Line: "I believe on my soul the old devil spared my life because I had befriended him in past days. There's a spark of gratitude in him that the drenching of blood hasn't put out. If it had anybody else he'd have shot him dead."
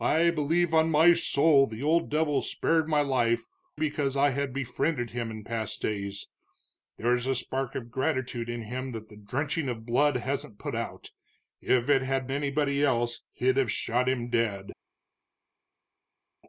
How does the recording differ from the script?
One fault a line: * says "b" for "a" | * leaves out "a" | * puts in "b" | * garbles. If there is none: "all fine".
all fine